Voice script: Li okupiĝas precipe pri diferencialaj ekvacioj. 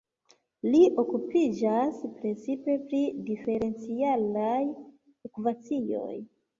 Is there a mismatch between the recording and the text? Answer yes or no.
no